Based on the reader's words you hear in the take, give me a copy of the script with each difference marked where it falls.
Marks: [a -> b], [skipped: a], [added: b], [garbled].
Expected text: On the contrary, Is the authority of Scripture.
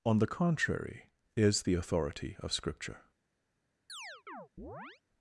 On the contrary, Is the authority of Scripture.